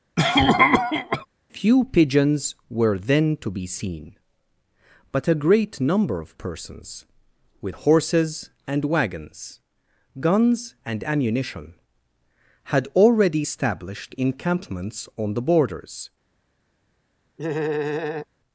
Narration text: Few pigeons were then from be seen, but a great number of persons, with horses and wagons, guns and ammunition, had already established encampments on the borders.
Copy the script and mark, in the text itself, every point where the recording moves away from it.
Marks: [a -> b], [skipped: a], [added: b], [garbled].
Few pigeons were then [from -> to] be seen, but a great number of persons, with horses and wagons, guns and ammunition, had already established encampments on the borders.